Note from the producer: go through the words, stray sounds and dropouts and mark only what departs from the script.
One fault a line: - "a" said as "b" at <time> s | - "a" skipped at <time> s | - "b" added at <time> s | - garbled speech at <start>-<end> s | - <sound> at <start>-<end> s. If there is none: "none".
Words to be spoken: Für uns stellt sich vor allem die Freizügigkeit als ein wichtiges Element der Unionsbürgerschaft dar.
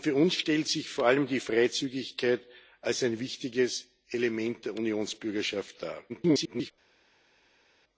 - garbled speech at 6.1-6.7 s